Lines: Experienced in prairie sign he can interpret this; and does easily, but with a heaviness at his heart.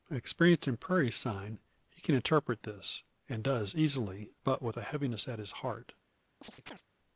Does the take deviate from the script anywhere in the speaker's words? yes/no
no